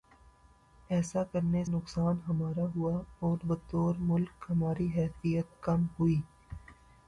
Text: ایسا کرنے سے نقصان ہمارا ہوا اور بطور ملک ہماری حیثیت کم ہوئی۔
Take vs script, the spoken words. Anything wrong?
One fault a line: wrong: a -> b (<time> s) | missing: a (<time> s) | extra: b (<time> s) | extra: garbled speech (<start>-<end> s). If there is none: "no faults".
missing: سے (1.6 s)